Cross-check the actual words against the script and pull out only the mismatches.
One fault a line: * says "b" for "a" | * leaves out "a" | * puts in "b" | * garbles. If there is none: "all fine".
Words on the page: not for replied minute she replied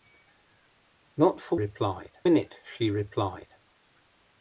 all fine